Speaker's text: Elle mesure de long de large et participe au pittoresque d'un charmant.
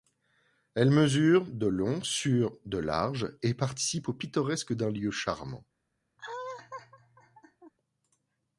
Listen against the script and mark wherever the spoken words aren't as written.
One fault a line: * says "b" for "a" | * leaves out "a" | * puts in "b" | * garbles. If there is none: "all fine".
* puts in "sur"
* puts in "lieu"